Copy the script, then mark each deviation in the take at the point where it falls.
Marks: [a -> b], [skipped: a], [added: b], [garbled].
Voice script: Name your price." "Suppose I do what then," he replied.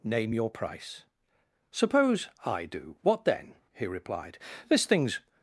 Name your price." "Suppose I do what then," he replied. [added: This thing's]